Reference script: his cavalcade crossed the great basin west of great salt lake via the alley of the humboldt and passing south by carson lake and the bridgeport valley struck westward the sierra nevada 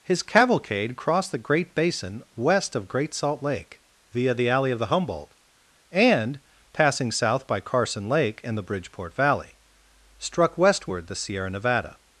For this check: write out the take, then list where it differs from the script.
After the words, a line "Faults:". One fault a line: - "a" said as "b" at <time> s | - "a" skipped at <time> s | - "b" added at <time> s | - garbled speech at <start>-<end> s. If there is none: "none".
his cavalcade crossed the great basin west of great salt lake via the alley of the humboldt and passing south by carson lake and the bridgeport valley struck westward the sierra nevada
Faults:
none